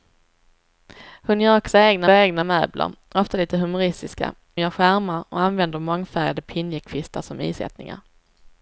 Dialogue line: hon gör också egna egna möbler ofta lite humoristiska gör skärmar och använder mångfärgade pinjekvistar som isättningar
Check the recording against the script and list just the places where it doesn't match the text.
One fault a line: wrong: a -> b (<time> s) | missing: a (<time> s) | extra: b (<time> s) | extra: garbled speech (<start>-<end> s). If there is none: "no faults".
no faults